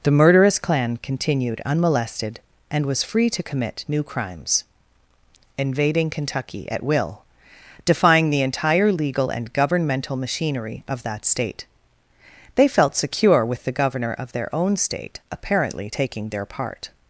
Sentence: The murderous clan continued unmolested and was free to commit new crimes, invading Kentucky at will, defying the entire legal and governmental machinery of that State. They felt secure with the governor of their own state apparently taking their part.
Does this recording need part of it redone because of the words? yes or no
no